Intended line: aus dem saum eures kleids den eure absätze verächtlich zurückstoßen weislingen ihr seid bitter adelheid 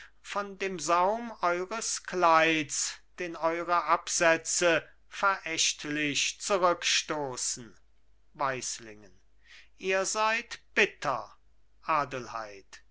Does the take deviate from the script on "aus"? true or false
true